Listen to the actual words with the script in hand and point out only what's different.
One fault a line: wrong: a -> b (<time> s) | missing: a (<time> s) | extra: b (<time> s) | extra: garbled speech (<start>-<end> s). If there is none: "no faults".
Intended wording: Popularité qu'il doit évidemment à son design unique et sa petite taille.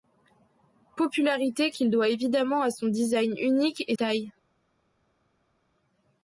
missing: sa petite (4.0 s)